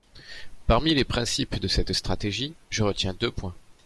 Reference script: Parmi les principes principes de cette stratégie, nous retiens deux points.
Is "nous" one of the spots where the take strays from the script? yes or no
yes